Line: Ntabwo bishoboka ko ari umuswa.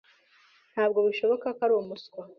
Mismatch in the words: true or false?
false